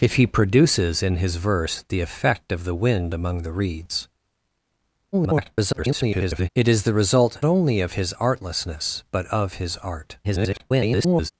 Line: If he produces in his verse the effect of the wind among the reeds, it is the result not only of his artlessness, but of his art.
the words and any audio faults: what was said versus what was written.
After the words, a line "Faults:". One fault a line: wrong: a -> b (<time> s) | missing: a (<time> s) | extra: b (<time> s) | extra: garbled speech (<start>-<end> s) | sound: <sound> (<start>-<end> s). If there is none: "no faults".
If he produces in his verse the effect of the wind among the reeds, [garbled] it is the result only of his artlessness, but of his art. [garbled]
Faults:
extra: garbled speech (5.1-6.5 s)
missing: not (7.4 s)
extra: garbled speech (10.2-11.3 s)